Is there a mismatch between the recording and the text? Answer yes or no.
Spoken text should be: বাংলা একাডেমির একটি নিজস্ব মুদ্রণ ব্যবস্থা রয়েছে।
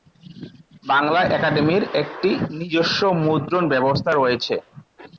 no